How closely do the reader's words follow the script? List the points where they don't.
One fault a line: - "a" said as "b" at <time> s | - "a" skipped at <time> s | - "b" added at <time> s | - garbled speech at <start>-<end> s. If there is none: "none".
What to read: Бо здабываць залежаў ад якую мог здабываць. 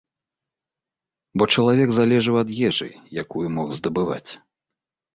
- "здабываць" said as "чалавек" at 1.6 s
- "ежы" added at 2.7 s